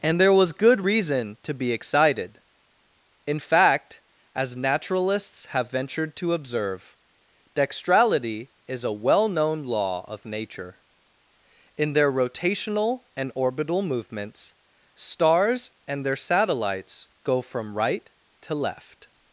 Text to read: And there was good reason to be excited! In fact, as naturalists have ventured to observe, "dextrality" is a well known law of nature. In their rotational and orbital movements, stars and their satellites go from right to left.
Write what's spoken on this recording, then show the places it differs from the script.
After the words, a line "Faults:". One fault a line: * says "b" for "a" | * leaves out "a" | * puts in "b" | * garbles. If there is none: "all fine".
And there was good reason to be excited! In fact, as naturalists have ventured to observe, "dextrality" is a well known law of nature. In their rotational and orbital movements, stars and their satellites go from right to left.
Faults:
all fine